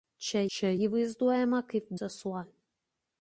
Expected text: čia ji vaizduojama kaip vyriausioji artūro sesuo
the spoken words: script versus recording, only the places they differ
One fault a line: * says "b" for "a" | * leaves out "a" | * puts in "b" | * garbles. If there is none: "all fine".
* puts in "čia"
* leaves out "vyriausioji artūro"